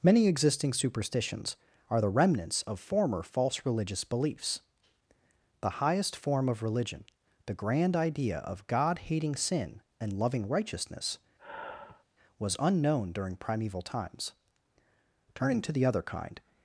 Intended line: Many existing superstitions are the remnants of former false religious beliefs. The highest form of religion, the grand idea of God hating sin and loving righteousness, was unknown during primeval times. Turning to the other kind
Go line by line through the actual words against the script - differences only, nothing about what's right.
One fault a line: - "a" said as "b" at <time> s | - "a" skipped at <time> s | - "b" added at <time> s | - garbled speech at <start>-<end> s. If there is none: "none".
none